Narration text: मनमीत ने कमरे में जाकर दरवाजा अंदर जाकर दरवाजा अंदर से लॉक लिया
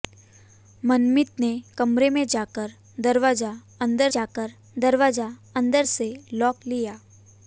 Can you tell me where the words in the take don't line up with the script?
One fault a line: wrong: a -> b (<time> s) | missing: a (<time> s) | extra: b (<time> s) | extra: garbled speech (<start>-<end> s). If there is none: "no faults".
no faults